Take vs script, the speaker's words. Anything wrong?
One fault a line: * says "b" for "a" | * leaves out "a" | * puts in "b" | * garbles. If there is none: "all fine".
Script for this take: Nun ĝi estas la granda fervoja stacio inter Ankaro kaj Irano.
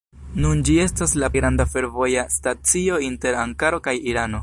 all fine